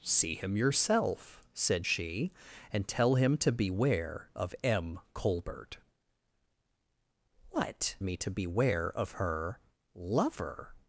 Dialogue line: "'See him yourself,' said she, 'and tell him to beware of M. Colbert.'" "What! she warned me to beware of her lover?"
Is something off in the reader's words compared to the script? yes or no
yes